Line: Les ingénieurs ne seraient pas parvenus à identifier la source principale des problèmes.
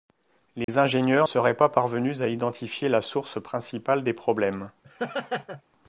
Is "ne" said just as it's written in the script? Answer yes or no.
no